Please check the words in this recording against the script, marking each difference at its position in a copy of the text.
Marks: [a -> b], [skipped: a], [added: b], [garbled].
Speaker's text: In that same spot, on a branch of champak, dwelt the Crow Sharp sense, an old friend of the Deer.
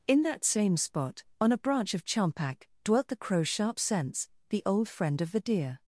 In that same spot, on a branch of champak, dwelt the Crow Sharp sense, [an -> the] old friend of the Deer.